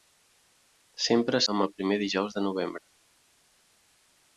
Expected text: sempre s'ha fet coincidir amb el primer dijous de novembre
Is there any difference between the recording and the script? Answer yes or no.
yes